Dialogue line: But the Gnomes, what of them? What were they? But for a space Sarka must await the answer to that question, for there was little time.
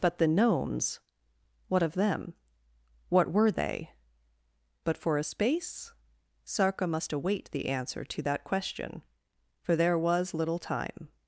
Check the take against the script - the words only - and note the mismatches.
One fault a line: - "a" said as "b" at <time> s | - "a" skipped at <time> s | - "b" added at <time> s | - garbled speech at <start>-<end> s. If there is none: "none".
none